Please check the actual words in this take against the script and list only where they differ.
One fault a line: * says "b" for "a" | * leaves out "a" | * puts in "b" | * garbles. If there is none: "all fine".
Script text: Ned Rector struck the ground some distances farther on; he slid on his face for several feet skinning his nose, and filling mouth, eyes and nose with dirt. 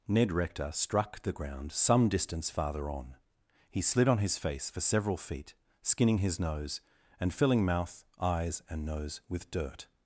* says "distance" for "distances"